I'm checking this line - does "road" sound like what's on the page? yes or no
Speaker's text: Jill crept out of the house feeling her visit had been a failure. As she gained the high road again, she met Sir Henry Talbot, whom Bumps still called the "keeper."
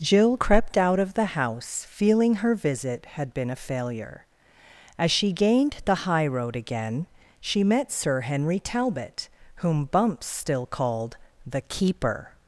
yes